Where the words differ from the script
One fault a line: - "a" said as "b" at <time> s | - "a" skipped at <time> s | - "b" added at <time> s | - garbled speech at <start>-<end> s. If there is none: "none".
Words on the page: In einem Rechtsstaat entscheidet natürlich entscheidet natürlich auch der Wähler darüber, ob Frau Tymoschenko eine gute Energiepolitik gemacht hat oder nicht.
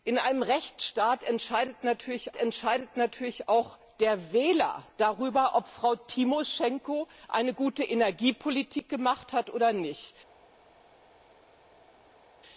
none